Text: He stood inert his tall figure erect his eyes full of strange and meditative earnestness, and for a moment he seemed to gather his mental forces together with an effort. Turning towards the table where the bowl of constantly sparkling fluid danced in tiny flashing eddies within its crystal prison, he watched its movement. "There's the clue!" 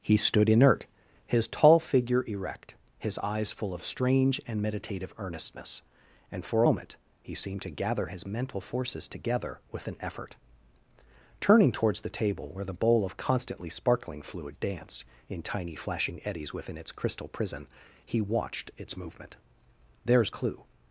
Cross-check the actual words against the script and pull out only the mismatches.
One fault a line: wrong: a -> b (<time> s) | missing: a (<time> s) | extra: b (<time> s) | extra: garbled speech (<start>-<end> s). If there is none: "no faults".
missing: a (6.6 s)
missing: the (20.3 s)